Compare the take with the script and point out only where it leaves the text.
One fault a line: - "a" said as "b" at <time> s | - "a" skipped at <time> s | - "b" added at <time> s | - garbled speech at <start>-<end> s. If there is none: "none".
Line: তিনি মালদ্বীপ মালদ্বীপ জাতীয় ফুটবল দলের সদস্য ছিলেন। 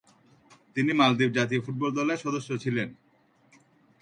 - "মালদ্বীপ" skipped at 1.3 s